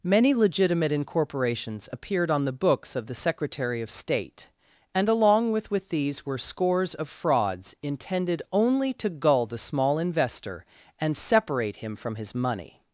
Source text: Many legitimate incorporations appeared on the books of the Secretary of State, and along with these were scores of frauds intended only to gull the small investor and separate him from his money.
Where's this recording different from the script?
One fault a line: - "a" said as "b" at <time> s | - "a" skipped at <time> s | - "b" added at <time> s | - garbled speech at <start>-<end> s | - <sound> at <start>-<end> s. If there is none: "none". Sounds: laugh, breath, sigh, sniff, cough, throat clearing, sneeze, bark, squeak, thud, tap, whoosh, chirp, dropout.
- "with" added at 5.7 s